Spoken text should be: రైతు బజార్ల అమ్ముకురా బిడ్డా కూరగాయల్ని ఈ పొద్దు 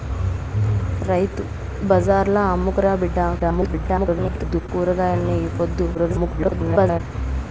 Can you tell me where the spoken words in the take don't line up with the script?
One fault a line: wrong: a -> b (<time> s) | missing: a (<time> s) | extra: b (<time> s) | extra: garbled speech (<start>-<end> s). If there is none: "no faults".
extra: garbled speech (3.4-4.7 s)
extra: garbled speech (5.9-7.0 s)